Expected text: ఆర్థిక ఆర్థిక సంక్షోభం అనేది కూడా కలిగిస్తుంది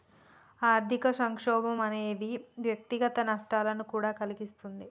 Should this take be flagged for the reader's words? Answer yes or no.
yes